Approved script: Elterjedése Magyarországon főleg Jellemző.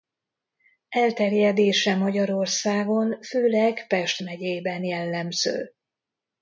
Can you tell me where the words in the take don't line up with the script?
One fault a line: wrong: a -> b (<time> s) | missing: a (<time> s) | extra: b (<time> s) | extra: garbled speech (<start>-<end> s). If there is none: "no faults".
extra: Pest megyében (3.9 s)